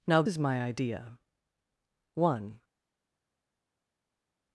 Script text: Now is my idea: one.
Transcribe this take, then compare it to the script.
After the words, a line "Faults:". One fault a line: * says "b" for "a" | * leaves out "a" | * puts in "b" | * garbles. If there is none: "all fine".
Now is my idea: one.
Faults:
all fine